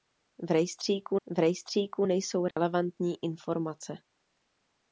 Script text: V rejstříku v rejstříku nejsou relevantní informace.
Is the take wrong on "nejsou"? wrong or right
right